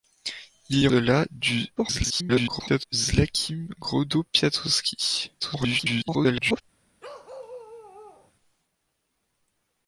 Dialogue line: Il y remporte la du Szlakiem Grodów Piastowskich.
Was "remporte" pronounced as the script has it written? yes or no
no